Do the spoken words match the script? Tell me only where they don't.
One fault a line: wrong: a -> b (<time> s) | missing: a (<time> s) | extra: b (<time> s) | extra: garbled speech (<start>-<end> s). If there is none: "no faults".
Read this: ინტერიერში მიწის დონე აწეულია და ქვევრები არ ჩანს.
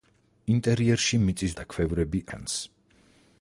missing: დონე აწეულია (1.5 s)
missing: არ (2.2 s)